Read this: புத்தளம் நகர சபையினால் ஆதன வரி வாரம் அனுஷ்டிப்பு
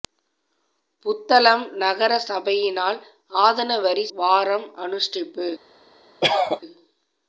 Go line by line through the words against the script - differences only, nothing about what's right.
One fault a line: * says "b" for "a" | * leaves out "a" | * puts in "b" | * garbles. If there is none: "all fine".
all fine